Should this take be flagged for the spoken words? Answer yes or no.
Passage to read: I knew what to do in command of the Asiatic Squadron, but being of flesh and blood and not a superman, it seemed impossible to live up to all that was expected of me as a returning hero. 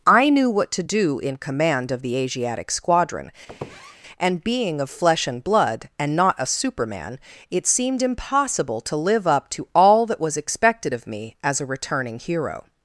yes